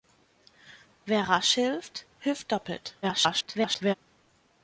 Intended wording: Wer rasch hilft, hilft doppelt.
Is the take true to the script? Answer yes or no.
no